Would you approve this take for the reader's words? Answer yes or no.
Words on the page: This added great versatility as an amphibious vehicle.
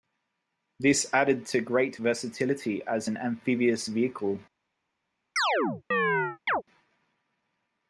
no